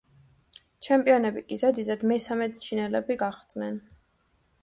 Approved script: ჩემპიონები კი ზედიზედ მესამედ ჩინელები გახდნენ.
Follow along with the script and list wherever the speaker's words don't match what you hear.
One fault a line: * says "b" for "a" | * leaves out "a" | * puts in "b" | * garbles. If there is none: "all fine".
all fine